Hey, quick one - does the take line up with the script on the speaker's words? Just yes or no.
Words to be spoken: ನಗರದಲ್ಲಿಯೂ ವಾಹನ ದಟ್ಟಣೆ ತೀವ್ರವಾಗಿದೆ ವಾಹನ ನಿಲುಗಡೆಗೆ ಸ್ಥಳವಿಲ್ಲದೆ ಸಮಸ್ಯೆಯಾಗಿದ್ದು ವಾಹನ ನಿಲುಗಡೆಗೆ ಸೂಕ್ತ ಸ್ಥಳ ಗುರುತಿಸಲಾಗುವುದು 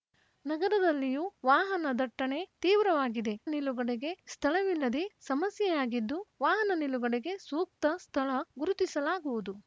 no